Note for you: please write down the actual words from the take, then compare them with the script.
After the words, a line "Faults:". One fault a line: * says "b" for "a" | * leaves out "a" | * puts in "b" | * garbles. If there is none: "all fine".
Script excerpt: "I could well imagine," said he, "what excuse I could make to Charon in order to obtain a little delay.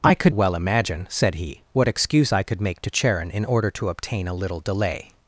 "I could well imagine," said he, "what excuse I could make to Charon in order to obtain a little delay.
Faults:
all fine